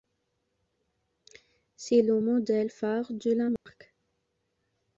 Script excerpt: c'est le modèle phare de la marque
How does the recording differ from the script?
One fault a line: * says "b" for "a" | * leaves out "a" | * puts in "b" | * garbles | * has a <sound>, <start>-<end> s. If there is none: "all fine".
* has a dropout, 3.6-3.7 s